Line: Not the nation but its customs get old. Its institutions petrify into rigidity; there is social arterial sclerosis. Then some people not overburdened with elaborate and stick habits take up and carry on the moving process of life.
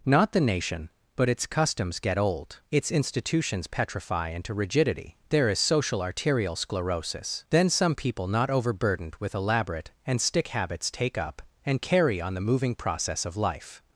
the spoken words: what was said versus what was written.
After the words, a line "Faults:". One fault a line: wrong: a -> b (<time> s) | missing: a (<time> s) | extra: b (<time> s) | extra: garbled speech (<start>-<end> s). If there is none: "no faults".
Not the nation but its customs get old. Its institutions petrify into rigidity; there is social arterial sclerosis. Then some people not overburdened with elaborate and stick habits take up and carry on the moving process of life.
Faults:
no faults